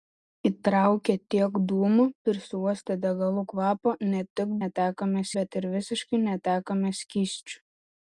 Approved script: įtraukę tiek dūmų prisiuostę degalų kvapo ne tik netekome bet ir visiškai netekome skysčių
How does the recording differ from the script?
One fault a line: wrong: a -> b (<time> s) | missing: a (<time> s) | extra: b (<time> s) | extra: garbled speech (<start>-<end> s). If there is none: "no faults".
no faults